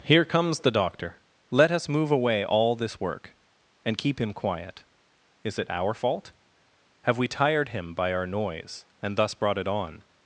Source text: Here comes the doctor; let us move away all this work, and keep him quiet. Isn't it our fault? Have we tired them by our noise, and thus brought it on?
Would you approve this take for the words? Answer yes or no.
no